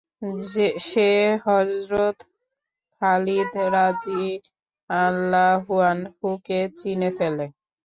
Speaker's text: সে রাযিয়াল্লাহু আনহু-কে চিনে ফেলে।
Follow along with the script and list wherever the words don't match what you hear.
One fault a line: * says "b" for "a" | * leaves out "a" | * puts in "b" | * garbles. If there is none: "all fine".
* puts in "হযরত খালিদ"